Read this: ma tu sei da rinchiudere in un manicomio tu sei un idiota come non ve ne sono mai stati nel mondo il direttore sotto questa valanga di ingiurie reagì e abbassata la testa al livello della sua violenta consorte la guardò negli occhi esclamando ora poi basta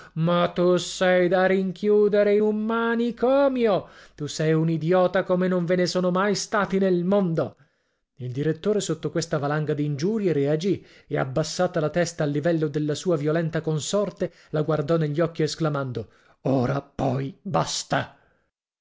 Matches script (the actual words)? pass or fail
pass